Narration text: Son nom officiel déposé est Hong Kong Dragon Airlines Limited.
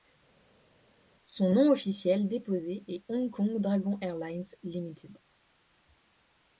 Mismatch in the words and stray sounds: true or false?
false